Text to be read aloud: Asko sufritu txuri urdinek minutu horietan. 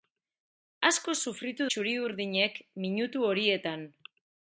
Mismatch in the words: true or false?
false